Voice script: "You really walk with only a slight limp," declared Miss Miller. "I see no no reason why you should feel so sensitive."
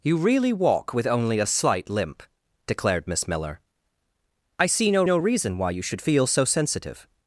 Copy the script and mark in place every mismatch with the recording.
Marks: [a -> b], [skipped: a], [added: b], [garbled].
"You really walk with only a slight limp," declared Miss Miller. "I see no no reason why you should feel so sensitive."